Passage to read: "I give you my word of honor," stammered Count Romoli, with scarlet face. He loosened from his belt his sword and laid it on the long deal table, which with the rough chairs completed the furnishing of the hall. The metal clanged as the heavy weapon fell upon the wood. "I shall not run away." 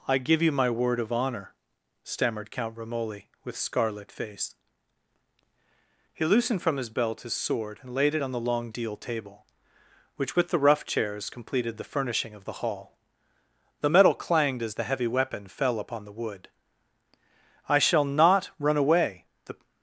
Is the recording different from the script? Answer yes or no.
yes